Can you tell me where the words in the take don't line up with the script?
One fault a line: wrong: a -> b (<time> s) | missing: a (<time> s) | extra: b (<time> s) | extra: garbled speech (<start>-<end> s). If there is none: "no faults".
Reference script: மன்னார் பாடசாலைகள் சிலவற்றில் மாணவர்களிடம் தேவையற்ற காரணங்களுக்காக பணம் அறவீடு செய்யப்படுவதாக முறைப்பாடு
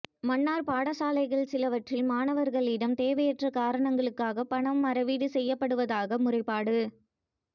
no faults